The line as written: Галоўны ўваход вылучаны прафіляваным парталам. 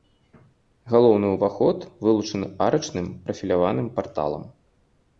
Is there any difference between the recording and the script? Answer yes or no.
yes